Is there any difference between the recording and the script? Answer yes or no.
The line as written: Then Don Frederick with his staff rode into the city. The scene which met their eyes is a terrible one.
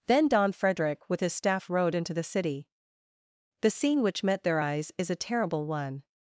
no